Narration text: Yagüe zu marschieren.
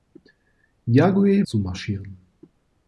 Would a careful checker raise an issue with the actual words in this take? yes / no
no